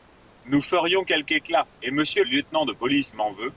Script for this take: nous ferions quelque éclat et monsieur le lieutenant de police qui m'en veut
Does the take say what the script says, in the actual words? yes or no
no